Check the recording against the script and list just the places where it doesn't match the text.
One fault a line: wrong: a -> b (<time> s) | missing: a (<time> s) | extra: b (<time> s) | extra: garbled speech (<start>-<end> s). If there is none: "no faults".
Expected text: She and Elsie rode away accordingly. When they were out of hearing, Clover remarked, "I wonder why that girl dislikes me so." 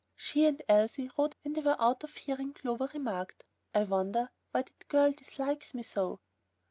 missing: away accordingly (1.4 s)